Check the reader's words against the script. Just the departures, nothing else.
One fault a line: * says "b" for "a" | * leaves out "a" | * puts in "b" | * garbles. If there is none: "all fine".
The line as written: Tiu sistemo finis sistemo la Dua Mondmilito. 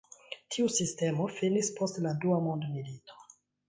* says "post" for "sistemo"